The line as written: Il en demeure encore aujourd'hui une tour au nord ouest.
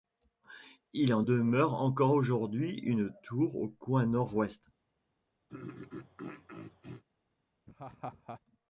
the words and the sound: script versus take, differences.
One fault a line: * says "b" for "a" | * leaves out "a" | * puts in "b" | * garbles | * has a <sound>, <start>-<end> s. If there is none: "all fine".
* puts in "coin"
* has a throat clearing, 5.5-7.0 s
* has a laugh, 7.7-8.4 s